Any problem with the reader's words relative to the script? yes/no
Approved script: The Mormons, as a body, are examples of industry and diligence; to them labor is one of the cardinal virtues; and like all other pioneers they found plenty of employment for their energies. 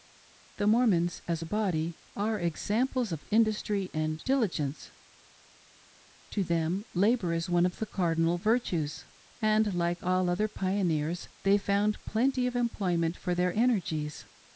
no